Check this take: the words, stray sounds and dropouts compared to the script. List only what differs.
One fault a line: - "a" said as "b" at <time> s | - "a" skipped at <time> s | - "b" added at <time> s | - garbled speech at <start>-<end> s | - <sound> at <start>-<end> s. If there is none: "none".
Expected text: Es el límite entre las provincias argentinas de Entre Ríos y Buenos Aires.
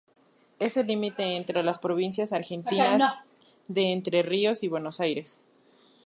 none